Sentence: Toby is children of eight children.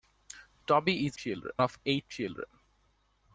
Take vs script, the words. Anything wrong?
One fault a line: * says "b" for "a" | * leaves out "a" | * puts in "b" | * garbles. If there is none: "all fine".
all fine